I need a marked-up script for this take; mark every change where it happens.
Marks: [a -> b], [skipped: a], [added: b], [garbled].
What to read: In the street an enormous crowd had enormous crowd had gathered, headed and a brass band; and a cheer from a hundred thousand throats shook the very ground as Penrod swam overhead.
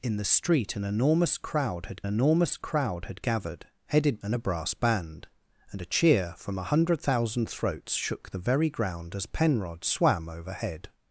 In the street an enormous crowd had enormous crowd had gathered, headed and a brass band; and a cheer from a hundred thousand throats shook the very ground as Penrod swam overhead.